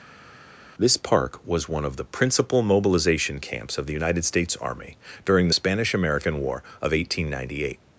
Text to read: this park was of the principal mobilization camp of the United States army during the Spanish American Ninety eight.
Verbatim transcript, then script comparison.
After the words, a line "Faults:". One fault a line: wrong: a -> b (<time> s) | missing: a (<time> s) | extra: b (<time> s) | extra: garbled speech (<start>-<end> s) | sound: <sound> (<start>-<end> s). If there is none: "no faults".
this park was one of the principal mobilization camps of the United States army during the Spanish American War of eighteen ninety eight.
Faults:
extra: one (1.7 s)
wrong: camp -> camps (3.4 s)
extra: War of eighteen (6.4 s)